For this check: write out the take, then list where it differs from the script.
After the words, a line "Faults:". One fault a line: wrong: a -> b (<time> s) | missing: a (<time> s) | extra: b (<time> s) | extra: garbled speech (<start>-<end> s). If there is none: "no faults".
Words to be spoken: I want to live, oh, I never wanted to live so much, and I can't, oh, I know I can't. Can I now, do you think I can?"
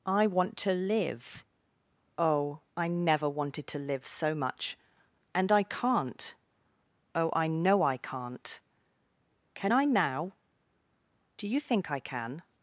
I want to live, oh, I never wanted to live so much, and I can't, oh, I know I can't. Can I now, do you think I can?"
Faults:
no faults